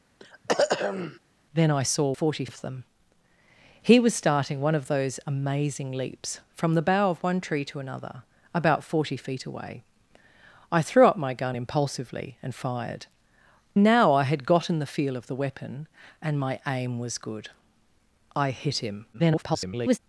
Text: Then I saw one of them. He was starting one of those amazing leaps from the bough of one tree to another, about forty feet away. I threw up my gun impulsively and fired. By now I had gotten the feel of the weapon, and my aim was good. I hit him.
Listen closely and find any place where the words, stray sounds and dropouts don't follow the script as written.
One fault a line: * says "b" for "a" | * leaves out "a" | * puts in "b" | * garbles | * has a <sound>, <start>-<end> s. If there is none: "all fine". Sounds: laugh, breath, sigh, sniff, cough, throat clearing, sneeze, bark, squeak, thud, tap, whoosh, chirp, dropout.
* has a throat clearing, 0.2-1.2 s
* says "forty" for "one"
* leaves out "By"
* garbles